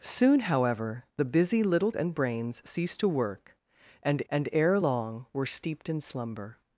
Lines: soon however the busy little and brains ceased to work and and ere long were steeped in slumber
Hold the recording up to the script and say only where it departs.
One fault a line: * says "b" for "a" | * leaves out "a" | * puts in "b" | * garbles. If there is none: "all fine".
all fine